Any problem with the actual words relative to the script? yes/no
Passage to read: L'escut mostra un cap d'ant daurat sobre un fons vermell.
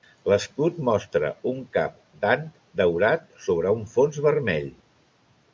no